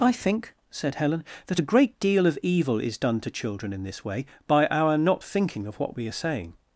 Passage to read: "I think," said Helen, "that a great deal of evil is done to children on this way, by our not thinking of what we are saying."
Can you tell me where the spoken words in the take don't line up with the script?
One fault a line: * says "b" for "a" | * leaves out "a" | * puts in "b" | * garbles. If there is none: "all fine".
* says "in" for "on"